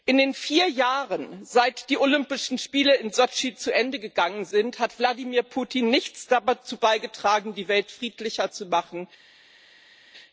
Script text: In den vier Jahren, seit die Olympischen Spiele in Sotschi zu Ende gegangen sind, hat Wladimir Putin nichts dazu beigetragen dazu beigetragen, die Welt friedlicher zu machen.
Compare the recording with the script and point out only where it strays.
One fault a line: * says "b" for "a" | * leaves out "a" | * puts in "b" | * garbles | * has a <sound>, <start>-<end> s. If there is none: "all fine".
* leaves out "dazu beigetragen"